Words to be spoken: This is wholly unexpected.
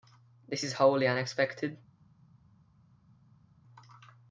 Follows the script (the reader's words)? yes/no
yes